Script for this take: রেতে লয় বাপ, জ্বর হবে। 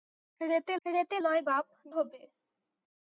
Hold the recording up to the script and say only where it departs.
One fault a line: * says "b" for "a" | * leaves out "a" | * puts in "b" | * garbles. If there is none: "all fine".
* puts in "রেতে"
* leaves out "জ্বর"